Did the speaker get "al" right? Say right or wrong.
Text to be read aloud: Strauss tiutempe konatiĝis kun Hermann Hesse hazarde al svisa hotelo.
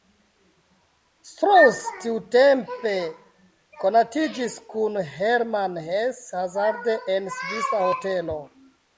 wrong